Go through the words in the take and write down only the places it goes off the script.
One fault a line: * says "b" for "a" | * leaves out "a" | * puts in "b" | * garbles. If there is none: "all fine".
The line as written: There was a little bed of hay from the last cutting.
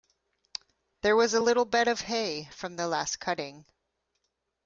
all fine